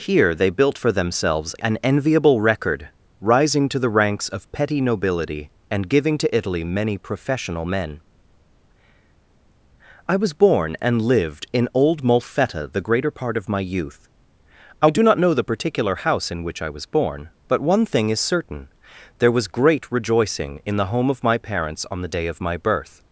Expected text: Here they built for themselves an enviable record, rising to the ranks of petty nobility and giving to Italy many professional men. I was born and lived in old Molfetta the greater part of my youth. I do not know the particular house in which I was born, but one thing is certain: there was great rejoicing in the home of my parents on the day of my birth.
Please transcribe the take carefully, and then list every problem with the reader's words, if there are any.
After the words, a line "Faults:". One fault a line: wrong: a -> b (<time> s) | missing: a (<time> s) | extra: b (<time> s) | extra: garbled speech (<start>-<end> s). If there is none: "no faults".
Here they built for themselves an enviable record, rising to the ranks of petty nobility and giving to Italy many professional men. I was born and lived in old Molfetta the greater part of my youth. I do not know the particular house in which I was born, but one thing is certain: there was great rejoicing in the home of my parents on the day of my birth.
Faults:
no faults